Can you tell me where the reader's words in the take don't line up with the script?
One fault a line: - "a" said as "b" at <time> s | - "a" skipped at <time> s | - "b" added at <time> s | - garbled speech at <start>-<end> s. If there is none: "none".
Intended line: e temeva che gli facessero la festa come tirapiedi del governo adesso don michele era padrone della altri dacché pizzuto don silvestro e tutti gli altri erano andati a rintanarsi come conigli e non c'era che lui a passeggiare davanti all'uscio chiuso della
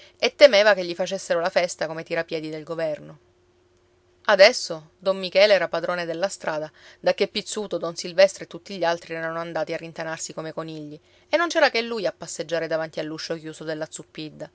- "altri" said as "strada" at 6.3 s